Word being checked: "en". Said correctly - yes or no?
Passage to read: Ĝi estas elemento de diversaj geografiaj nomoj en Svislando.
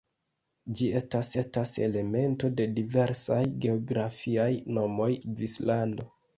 no